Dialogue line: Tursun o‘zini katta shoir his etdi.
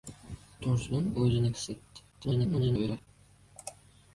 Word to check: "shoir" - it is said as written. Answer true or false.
false